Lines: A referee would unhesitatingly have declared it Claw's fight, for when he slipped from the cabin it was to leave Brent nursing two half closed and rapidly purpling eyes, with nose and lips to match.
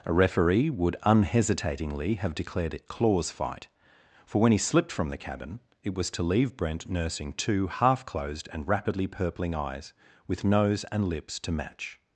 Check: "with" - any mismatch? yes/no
no